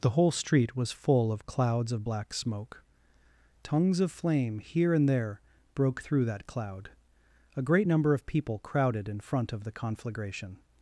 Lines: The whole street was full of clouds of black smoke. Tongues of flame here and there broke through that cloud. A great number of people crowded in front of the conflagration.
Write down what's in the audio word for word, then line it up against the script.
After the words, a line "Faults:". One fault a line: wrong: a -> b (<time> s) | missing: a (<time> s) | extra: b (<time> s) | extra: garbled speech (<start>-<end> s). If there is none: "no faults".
The whole street was full of clouds of black smoke. Tongues of flame here and there broke through that cloud. A great number of people crowded in front of the conflagration.
Faults:
no faults